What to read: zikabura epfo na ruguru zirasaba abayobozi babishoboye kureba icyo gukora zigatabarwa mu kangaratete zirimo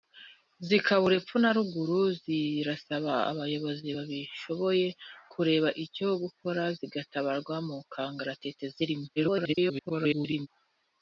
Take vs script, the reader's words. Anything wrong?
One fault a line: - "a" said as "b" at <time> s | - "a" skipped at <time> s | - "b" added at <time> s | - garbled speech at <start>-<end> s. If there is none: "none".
- garbled speech at 9.2-10.5 s